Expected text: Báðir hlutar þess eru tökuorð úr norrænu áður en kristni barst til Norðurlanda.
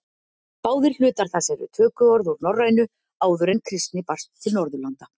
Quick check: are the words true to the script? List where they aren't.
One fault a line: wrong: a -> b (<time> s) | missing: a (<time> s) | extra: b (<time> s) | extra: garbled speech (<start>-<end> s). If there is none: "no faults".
no faults